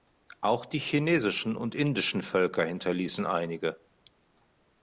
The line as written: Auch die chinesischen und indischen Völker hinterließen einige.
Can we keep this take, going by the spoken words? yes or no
yes